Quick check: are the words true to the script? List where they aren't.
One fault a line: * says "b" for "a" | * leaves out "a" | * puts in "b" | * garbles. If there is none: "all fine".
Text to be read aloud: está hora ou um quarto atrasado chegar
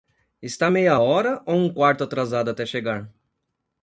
* puts in "meia"
* puts in "até"